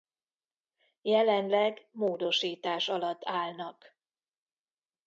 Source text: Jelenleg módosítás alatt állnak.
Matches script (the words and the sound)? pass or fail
pass